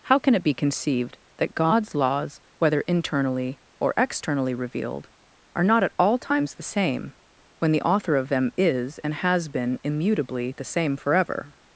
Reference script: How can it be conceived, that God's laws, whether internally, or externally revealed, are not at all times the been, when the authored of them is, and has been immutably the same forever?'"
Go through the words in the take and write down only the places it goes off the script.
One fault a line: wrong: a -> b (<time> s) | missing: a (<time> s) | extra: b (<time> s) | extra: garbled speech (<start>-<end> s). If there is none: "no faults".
wrong: been -> same (6.6 s)
wrong: authored -> author (7.8 s)